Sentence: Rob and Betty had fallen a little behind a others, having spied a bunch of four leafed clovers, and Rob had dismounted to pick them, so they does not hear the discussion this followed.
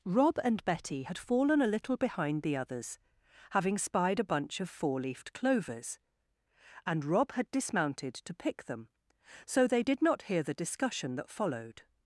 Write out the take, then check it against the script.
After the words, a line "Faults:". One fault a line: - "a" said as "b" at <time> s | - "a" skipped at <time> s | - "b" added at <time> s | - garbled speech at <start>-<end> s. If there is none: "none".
Rob and Betty had fallen a little behind the others, having spied a bunch of four leafed clovers, and Rob had dismounted to pick them, so they did not hear the discussion that followed.
Faults:
- "a" said as "the" at 2.4 s
- "does" said as "did" at 9.8 s
- "this" said as "that" at 11.1 s